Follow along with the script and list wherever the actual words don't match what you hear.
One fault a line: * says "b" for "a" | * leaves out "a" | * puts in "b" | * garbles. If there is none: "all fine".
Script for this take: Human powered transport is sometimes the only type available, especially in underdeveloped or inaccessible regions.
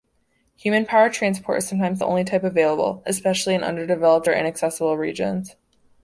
all fine